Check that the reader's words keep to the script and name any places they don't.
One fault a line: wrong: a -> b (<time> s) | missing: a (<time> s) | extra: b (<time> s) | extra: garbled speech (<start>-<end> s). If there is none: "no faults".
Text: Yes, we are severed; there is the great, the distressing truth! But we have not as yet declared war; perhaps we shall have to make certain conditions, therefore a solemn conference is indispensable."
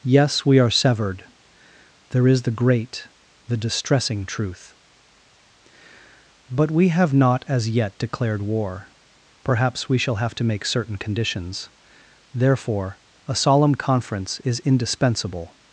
no faults